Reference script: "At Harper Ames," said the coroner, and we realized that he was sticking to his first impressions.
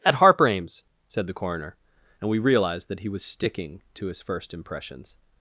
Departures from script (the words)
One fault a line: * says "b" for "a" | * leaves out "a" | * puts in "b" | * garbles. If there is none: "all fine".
all fine